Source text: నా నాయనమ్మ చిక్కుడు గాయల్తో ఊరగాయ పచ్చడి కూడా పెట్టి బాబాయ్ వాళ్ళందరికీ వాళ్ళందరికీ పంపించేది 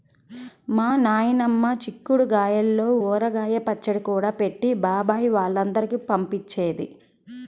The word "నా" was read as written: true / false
false